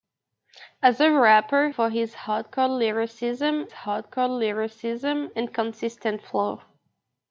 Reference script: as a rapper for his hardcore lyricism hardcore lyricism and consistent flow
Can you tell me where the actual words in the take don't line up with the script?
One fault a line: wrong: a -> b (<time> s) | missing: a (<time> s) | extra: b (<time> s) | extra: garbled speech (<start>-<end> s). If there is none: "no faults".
no faults